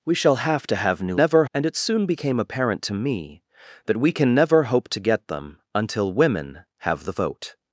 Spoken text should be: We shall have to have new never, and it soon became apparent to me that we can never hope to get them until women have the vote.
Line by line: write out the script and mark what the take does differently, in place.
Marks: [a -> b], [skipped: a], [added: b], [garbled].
We shall have to have new never, and it soon became apparent to me that we can never hope to get them until women have the vote.